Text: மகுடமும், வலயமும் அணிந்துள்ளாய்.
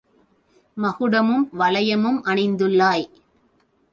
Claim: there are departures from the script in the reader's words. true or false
false